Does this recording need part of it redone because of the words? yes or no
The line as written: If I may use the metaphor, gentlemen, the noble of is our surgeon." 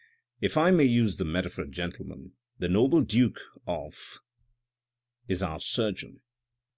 yes